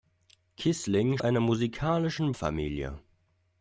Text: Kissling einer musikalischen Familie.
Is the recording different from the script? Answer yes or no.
no